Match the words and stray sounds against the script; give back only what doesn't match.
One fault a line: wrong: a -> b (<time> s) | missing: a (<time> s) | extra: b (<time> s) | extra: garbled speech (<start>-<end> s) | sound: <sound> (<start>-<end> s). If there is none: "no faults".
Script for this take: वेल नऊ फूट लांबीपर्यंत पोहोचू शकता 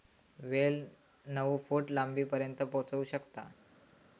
no faults